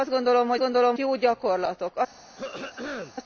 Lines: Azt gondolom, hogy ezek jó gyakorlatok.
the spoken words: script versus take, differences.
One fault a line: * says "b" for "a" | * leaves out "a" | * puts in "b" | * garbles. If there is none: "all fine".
* says "gondolom" for "ezek"